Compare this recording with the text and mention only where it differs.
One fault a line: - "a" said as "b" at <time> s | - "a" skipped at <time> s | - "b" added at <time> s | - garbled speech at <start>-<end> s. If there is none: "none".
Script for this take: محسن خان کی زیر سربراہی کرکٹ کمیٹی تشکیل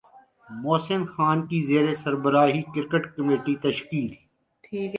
none